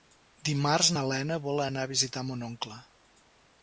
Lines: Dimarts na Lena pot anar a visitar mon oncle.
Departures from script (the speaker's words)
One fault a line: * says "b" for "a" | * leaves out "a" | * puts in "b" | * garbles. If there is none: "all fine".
* says "vol" for "pot"